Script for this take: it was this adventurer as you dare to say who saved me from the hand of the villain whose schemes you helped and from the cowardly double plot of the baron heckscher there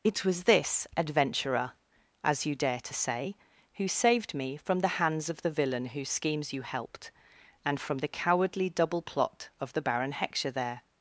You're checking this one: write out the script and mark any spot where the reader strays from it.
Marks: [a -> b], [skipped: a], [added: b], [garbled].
it was this adventurer as you dare to say who saved me from the [hand -> hands] of the villain whose schemes you helped and from the cowardly double plot of the baron heckscher there